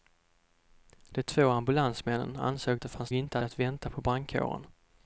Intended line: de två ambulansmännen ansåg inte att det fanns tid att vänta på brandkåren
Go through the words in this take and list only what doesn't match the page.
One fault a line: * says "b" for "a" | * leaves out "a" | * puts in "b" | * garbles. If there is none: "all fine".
* leaves out "inte"
* says "inte" for "tid"